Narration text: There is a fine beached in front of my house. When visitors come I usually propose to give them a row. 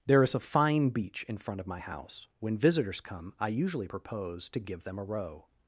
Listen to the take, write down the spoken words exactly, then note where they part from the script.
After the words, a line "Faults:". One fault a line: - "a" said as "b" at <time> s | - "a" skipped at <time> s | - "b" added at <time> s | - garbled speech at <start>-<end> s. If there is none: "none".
There is a fine beach in front of my house. When visitors come I usually propose to give them a row.
Faults:
- "beached" said as "beach" at 0.9 s